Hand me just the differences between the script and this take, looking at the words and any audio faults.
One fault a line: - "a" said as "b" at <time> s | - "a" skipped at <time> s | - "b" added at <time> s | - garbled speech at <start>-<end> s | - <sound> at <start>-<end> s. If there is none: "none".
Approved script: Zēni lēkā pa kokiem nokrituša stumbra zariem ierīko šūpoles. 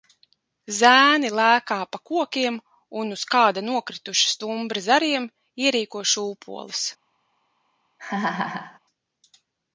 - "un uz kāda" added at 3.0 s
- laugh at 8.0-8.8 s